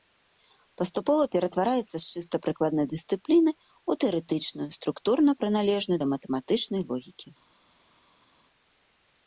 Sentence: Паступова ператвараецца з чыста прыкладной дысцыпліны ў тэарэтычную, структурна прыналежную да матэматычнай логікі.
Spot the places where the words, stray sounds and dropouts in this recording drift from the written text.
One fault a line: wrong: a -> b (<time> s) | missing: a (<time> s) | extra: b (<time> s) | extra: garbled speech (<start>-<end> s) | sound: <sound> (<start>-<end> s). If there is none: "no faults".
no faults